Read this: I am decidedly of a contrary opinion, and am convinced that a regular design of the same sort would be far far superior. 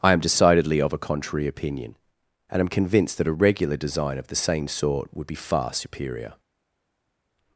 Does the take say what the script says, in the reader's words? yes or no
no